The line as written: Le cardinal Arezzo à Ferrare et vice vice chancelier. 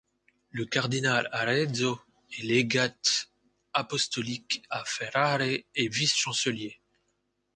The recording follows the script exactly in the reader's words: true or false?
false